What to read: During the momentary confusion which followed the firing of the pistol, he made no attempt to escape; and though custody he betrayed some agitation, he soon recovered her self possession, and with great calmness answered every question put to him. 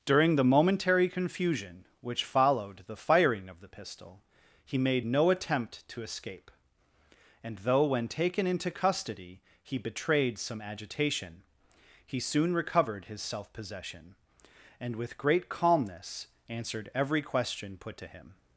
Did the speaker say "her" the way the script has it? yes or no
no